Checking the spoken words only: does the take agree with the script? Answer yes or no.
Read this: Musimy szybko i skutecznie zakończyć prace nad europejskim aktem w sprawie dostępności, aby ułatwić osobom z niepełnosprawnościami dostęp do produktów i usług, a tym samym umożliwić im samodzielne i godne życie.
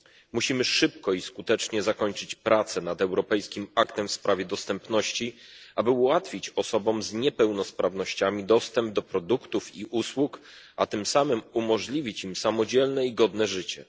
yes